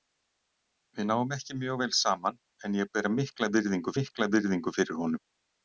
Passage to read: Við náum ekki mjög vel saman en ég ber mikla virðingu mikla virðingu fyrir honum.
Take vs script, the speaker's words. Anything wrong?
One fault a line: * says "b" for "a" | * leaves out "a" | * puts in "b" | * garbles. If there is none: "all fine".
all fine